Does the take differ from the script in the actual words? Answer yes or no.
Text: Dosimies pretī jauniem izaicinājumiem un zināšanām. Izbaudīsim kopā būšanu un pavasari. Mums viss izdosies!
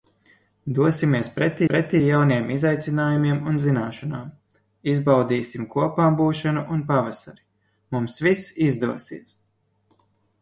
yes